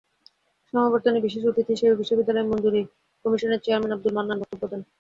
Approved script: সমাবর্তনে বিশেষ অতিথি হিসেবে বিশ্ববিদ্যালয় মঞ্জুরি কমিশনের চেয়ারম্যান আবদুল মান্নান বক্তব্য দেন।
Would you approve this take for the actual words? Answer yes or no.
yes